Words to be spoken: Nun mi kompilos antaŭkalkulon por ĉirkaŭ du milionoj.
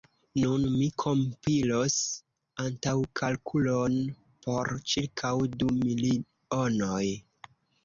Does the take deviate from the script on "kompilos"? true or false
false